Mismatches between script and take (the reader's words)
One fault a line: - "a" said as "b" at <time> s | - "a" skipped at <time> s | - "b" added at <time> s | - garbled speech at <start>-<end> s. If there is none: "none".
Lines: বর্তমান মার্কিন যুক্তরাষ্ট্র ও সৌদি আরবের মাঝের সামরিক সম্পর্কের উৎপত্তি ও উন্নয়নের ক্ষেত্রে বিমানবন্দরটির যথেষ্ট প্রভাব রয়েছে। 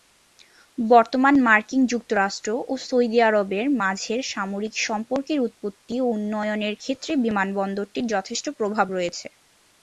none